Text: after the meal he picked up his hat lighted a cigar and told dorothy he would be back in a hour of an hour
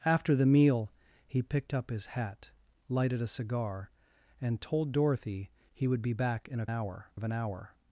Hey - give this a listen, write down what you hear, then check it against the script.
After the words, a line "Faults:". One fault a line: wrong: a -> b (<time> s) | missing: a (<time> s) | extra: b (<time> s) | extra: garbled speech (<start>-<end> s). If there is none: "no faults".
after the meal he picked up his hat lighted a cigar and told dorothy he would be back in a hour of an hour
Faults:
no faults